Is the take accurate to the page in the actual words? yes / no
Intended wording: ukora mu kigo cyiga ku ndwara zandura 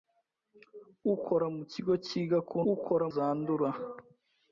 no